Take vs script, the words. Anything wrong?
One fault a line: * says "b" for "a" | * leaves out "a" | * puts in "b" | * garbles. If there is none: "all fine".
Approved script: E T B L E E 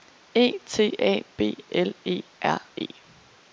* puts in "A"
* puts in "R"